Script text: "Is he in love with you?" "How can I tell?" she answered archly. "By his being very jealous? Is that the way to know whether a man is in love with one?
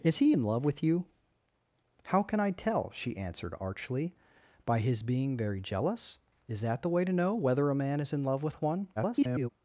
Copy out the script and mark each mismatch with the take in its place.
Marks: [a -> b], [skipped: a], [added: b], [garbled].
"Is he in love with you?" "How can I tell?" she answered archly. "By his being very jealous? Is that the way to know whether a man is in love with one? [garbled]